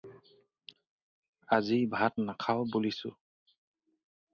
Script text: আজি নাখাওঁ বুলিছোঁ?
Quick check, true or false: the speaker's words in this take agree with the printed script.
false